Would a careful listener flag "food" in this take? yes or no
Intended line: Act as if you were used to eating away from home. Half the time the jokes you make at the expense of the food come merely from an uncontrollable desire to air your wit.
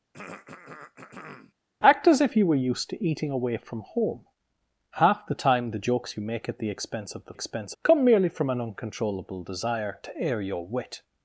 yes